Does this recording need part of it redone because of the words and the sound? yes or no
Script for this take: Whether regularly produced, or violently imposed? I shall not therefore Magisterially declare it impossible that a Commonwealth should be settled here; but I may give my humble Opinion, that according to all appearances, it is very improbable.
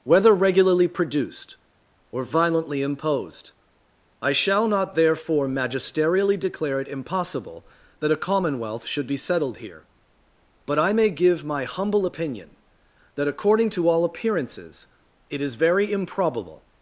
no